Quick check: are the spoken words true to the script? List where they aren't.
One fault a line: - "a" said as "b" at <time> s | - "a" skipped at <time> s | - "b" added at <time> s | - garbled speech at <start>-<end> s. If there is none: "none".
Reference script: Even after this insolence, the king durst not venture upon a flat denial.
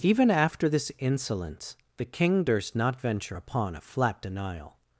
none